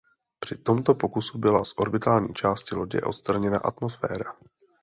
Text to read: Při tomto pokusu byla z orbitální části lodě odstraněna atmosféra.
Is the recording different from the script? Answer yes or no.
no